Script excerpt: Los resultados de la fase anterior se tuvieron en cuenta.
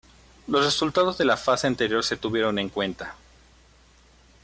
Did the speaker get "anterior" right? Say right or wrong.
right